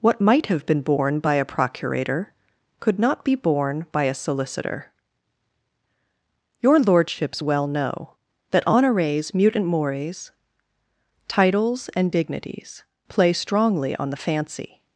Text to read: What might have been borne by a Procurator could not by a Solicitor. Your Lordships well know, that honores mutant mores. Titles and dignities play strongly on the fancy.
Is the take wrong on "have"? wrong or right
right